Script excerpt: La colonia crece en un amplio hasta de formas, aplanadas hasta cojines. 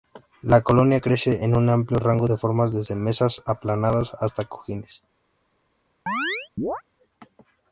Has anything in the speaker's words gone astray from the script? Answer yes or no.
yes